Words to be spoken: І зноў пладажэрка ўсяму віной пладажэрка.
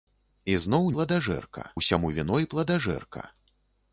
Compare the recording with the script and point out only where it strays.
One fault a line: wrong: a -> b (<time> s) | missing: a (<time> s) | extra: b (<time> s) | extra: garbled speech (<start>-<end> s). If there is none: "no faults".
no faults